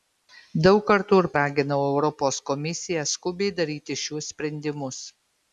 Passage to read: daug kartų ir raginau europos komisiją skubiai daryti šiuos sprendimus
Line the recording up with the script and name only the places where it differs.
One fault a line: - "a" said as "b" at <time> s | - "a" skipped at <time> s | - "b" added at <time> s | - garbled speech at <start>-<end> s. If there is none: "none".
none